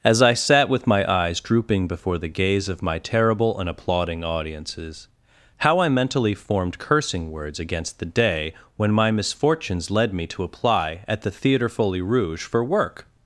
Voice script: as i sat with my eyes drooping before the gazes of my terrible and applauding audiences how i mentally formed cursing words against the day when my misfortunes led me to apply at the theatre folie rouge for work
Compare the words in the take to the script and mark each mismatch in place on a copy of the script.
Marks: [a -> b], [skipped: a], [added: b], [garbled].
as i sat with my eyes drooping before the [gazes -> gaze] of my terrible and applauding audiences how i mentally formed cursing words against the day when my misfortunes led me to apply at the theatre folie rouge for work